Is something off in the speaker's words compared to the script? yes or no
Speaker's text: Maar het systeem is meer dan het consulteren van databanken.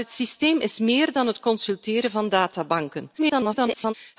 yes